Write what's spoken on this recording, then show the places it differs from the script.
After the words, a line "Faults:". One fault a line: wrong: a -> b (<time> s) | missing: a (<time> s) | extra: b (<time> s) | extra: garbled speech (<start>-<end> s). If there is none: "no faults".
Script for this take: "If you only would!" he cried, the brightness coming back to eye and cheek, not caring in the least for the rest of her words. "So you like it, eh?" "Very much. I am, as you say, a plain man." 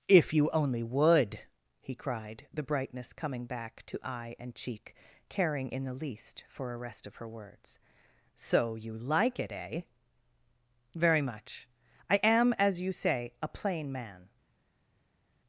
"If you only would!" he cried, the brightness coming back to eye and cheek, caring in the least for a rest of her words. "So you like it, eh?" "Very much. I am, as you say, a plain man."
Faults:
missing: not (5.0 s)
wrong: the -> a (6.7 s)